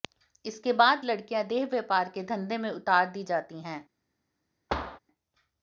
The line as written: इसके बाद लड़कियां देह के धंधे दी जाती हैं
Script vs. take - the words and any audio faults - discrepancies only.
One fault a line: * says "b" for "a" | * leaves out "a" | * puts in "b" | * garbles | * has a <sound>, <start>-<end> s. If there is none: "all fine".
* puts in "व्यापार"
* puts in "में उतार"
* has a thud, 4.7-5.0 s